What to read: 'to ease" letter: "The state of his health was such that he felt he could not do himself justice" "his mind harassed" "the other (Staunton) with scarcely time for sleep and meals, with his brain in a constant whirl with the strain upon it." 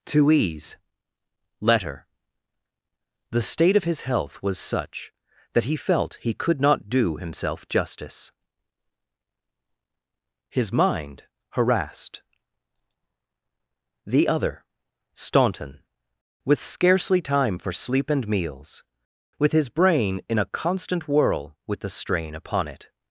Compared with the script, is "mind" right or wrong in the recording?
right